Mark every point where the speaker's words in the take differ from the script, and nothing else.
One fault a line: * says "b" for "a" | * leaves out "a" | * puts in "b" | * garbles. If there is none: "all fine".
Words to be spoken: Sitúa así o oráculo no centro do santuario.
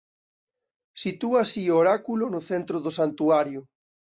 all fine